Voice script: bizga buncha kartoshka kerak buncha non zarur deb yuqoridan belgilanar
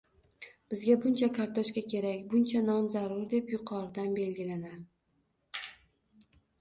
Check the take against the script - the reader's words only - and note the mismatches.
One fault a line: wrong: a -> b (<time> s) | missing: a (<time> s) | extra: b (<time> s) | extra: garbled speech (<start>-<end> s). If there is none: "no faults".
no faults